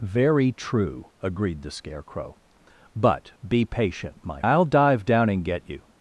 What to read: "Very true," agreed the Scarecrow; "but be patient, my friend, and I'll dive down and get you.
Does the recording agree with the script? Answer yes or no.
no